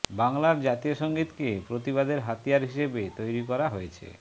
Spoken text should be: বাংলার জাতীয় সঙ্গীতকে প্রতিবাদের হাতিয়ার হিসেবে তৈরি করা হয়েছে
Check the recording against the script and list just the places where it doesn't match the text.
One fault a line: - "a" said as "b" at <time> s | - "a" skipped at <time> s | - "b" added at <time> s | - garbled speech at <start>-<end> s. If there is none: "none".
none